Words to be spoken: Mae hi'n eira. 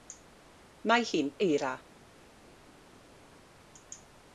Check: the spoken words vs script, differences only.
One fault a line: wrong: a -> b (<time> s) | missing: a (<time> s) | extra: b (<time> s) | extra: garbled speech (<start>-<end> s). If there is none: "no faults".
no faults